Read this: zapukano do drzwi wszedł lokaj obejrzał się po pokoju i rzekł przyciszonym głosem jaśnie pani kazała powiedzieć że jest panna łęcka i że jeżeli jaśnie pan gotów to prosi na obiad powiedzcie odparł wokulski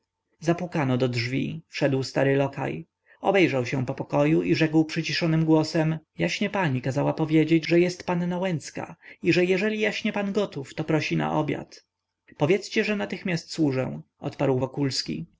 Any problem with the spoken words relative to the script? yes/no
yes